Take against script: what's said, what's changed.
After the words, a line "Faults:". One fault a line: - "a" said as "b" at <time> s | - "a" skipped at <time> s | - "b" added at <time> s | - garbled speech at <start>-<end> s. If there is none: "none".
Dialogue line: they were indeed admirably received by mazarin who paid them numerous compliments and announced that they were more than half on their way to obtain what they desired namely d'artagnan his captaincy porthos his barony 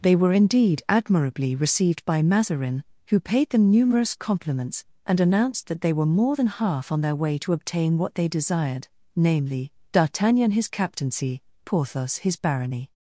they were indeed admirably received by mazarin who paid them numerous compliments and announced that they were more than half on their way to obtain what they desired namely d'artagnan his captaincy porthos his barony
Faults:
none